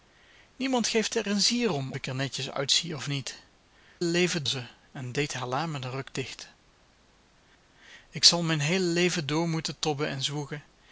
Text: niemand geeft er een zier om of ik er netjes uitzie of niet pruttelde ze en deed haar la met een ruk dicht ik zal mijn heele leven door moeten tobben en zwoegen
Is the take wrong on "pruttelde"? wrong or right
wrong